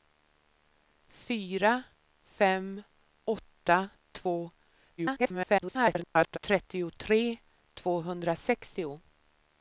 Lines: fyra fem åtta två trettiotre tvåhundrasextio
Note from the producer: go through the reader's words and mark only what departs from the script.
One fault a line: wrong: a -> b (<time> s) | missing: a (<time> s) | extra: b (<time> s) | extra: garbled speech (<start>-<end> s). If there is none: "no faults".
extra: garbled speech (5.0-6.4 s)